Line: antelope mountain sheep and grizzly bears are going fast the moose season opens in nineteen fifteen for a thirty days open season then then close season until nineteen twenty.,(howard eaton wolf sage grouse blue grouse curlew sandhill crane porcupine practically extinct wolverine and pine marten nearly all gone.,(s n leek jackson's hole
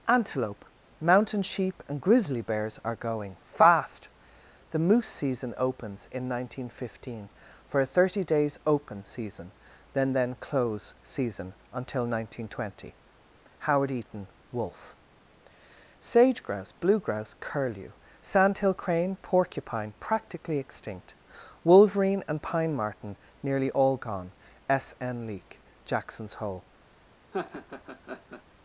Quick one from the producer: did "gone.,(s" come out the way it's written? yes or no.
yes